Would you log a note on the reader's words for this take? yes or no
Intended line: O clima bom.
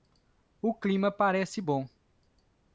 yes